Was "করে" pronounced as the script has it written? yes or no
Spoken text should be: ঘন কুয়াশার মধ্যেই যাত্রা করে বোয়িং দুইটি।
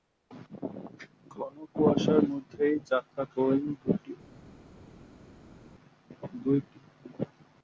no